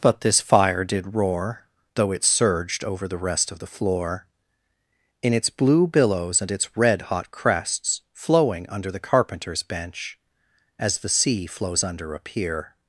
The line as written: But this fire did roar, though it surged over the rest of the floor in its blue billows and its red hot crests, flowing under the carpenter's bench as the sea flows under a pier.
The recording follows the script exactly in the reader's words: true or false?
true